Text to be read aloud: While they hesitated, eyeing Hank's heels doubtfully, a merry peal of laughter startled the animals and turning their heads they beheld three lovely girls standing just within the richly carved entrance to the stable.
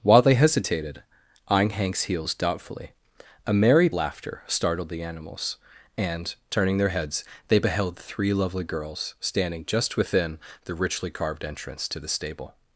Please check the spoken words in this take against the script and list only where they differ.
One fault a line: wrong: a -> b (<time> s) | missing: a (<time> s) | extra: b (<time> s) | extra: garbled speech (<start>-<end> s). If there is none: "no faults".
missing: peal of (3.9 s)